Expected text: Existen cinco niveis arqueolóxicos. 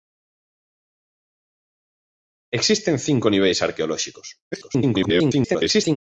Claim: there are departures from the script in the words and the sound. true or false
true